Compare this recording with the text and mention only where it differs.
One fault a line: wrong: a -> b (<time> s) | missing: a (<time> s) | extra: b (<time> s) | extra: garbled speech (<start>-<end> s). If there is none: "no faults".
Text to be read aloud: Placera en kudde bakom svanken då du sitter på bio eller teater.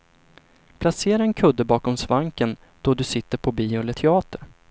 no faults